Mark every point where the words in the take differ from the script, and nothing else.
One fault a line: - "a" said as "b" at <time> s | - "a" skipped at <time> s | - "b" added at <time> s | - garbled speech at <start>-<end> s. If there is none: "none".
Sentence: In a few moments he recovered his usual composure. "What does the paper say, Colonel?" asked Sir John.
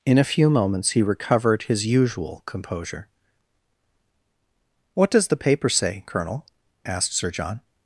none